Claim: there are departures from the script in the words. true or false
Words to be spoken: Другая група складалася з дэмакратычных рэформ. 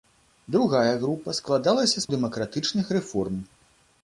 false